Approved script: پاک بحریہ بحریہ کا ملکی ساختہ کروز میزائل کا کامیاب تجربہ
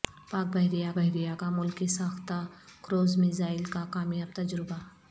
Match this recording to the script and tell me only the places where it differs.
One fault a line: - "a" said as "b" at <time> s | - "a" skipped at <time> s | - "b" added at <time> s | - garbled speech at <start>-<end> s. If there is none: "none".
none